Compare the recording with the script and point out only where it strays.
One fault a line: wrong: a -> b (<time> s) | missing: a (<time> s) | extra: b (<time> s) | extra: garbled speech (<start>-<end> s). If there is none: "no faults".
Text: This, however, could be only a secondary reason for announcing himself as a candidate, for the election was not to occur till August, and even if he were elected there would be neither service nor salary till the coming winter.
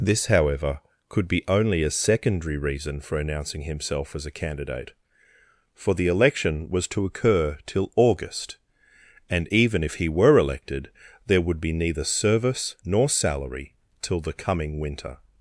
missing: not (6.9 s)